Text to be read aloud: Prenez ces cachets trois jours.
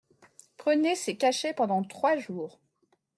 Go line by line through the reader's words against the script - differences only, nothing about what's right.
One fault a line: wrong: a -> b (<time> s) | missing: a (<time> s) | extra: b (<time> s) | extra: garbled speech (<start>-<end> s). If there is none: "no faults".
extra: pendant (1.5 s)